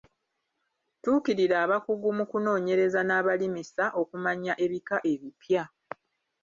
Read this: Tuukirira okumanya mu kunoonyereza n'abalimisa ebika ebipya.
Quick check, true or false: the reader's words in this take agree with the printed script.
false